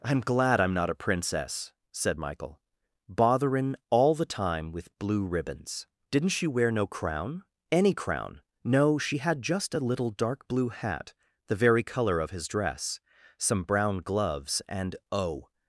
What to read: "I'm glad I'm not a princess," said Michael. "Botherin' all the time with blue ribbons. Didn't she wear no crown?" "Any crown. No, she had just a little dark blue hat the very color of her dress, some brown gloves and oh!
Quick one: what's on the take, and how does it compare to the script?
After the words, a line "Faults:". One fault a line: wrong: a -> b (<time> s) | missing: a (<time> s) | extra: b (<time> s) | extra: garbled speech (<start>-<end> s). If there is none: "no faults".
"I'm glad I'm not a princess," said Michael. "Botherin' all the time with blue ribbons. Didn't she wear no crown?" "Any crown. No, she had just a little dark blue hat the very color of his dress, some brown gloves and oh!
Faults:
wrong: her -> his (12.3 s)